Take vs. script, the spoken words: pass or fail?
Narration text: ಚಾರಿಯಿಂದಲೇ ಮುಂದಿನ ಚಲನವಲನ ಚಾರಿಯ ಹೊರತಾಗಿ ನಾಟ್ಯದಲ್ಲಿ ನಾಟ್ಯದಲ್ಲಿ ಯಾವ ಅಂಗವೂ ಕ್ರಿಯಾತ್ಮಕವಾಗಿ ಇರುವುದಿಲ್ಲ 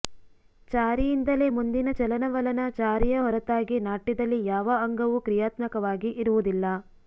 fail